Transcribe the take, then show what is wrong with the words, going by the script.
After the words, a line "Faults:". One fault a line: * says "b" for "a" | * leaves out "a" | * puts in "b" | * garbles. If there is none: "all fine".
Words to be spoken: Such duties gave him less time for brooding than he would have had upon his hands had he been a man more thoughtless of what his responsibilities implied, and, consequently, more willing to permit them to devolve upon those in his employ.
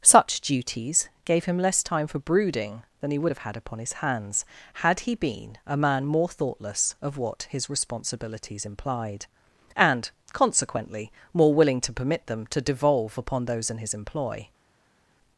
Such duties gave him less time for brooding than he would have had upon his hands had he been a man more thoughtless of what his responsibilities implied, and, consequently, more willing to permit them to devolve upon those in his employ.
Faults:
all fine